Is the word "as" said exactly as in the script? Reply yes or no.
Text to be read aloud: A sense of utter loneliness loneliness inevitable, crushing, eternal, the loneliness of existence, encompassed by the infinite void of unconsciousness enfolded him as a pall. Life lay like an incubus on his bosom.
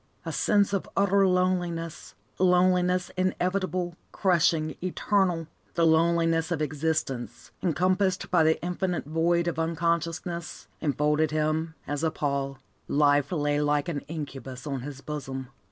yes